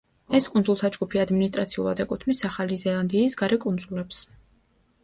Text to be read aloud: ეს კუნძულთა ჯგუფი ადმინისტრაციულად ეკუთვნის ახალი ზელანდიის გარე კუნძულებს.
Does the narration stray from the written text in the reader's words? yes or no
no